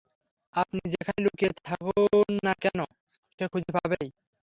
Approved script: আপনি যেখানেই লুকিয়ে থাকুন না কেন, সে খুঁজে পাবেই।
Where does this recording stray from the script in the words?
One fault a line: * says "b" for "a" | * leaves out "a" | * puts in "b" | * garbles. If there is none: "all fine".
all fine